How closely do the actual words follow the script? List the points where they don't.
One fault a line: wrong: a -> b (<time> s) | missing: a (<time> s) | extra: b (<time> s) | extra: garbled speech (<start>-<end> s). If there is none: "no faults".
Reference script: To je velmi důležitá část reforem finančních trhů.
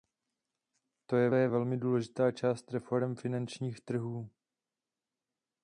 extra: je (1.3 s)